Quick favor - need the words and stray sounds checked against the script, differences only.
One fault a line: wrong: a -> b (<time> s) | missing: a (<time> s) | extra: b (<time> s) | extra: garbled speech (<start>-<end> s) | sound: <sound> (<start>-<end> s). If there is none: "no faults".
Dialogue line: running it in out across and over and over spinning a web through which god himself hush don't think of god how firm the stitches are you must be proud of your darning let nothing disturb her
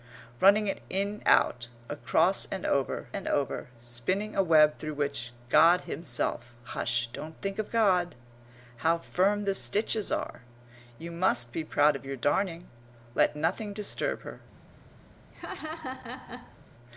sound: laugh (15.3-16.6 s)